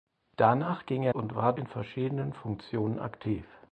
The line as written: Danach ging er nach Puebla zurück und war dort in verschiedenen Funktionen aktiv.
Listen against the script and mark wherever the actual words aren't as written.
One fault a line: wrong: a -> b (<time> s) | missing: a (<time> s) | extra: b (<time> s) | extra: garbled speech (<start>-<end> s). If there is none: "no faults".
missing: nach Puebla zurück (1.1 s)
missing: dort (1.5 s)